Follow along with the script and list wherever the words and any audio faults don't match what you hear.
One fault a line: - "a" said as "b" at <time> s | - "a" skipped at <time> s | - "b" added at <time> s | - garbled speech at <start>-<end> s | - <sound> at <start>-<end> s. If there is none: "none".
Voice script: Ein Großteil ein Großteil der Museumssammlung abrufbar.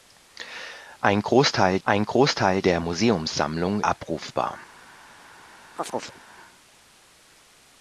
- chirp at 5.8-6.2 s